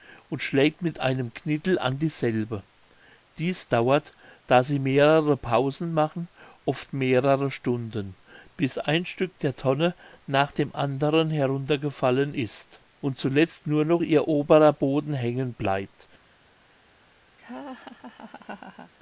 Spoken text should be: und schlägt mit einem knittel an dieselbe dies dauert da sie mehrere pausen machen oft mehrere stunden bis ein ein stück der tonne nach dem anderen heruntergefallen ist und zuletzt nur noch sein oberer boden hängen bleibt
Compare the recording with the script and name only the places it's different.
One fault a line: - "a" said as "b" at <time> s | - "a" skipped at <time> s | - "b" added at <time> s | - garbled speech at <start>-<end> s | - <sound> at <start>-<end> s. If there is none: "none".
- "ein" skipped at 9.0 s
- "sein" said as "ihr" at 14.0 s
- laugh at 17.4-18.9 s